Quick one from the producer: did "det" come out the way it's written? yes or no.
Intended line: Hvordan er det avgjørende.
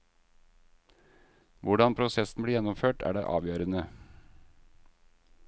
yes